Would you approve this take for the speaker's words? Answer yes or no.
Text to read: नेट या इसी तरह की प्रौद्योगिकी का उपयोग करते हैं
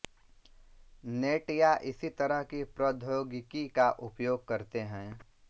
yes